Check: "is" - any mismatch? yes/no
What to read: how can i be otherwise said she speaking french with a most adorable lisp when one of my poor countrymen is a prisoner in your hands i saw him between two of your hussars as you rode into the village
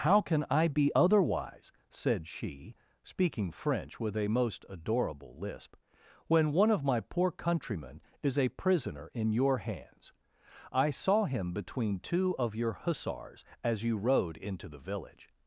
no